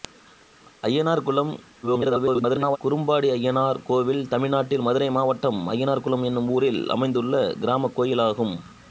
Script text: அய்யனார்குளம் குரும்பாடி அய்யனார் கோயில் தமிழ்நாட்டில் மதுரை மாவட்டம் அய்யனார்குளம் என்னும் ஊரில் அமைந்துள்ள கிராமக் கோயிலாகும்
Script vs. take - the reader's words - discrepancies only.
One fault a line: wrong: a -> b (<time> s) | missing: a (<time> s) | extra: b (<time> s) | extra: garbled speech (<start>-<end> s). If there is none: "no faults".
extra: garbled speech (1.8-2.8 s)